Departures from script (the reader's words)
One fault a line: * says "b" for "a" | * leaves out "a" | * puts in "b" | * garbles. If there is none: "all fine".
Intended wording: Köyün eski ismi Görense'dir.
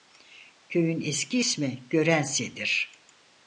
all fine